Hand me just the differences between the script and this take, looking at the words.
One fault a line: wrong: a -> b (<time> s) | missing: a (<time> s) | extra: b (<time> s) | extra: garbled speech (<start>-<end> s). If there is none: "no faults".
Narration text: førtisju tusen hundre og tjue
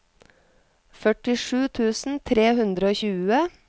extra: tre (2.3 s)